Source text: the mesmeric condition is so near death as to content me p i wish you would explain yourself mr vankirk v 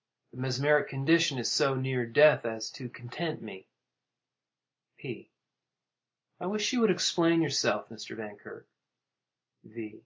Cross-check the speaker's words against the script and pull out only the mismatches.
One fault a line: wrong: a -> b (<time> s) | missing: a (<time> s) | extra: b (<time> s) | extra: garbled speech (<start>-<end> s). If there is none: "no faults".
no faults